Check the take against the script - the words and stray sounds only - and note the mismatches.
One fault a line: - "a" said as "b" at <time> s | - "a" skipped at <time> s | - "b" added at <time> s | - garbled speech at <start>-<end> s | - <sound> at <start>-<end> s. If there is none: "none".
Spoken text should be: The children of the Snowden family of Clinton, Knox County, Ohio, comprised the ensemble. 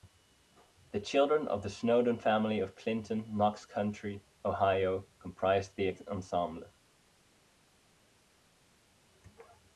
none